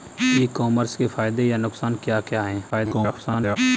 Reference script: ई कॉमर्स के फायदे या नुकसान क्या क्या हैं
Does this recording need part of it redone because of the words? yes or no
yes